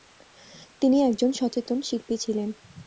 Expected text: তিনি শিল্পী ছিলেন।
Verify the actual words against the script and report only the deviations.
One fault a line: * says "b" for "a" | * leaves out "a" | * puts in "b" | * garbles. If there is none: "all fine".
* puts in "একজন সচেতন"